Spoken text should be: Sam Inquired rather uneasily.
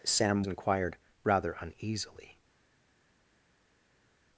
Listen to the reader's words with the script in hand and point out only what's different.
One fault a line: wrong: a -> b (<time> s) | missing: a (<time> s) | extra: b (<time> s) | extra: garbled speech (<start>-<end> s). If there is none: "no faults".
no faults